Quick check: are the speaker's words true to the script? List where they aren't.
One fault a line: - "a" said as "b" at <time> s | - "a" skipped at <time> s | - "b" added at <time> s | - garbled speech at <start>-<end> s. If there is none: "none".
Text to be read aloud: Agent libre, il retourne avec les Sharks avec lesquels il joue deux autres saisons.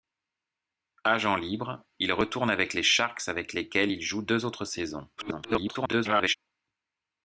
- garbled speech at 5.2-6.3 s